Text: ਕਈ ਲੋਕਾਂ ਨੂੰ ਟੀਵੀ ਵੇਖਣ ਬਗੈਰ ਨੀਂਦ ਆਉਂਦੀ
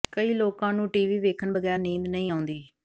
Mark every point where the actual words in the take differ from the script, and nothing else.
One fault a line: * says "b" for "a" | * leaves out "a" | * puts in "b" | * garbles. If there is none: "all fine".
* puts in "ਨਹੀਂ"